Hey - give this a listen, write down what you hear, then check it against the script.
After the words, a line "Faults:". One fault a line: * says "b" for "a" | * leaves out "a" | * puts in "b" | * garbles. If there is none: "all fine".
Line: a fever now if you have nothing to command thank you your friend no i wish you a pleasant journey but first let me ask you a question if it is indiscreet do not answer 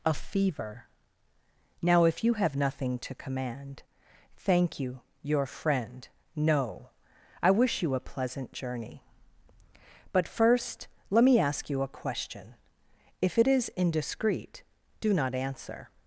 a fever now if you have nothing to command thank you your friend no i wish you a pleasant journey but first let me ask you a question if it is indiscreet do not answer
Faults:
all fine